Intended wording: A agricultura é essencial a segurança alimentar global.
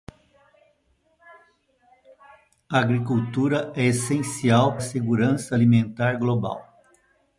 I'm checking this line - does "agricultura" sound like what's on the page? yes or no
yes